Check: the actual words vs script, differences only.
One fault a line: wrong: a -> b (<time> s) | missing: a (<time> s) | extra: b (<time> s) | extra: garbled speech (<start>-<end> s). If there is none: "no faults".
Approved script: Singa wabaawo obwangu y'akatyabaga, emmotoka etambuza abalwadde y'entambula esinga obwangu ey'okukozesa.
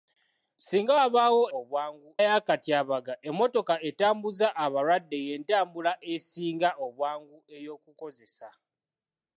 no faults